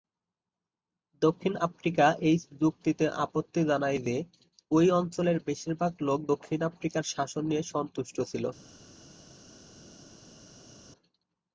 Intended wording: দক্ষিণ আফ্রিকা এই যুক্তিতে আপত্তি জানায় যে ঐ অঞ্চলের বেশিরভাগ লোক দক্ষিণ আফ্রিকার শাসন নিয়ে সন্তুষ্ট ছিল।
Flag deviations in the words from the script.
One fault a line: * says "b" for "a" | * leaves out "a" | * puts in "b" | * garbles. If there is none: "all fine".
all fine